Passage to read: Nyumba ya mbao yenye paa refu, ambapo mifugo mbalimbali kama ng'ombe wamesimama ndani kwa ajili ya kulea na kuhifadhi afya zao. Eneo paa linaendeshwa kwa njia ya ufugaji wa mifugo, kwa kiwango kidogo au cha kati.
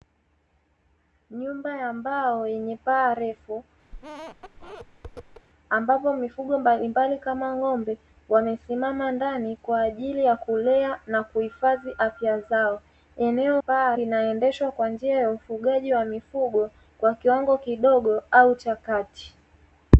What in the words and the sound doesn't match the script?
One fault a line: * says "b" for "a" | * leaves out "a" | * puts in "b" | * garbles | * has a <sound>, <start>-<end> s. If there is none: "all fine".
* has a squeak, 3.9-5.5 s